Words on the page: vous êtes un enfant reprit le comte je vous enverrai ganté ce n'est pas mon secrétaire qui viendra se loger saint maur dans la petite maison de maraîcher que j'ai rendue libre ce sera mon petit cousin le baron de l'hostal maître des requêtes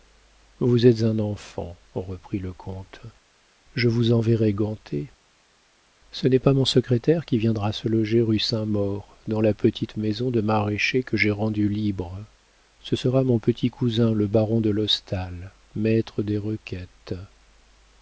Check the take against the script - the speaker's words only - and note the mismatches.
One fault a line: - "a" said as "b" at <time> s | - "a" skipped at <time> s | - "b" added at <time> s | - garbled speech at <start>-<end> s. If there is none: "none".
- "rue" added at 8.2 s